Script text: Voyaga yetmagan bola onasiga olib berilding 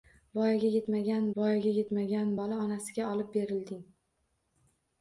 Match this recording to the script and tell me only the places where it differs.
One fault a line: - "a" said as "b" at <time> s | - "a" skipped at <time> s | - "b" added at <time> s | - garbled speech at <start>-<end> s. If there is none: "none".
- "voyaga yetmagan" added at 1.4 s